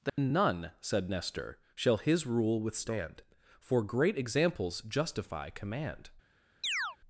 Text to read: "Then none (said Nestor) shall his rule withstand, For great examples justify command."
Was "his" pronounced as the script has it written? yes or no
yes